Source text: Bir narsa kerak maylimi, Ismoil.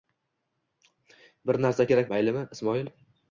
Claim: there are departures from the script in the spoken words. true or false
false